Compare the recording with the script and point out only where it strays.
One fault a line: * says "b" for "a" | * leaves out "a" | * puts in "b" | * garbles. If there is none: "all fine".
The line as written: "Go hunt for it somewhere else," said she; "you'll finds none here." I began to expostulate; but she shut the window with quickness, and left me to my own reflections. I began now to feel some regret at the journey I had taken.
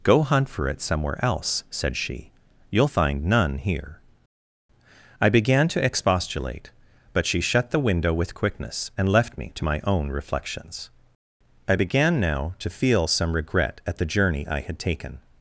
* says "find" for "finds"